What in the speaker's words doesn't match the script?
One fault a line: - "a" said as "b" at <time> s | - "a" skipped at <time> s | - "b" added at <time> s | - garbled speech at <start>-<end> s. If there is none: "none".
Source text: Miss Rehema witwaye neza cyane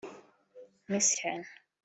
- "Rehema witwaye neza" skipped at 1.1 s